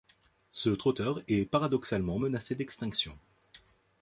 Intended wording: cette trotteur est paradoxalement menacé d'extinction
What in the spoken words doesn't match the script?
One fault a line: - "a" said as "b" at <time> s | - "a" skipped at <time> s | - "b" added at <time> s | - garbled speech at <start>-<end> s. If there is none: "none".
- "cette" said as "ce" at 0.5 s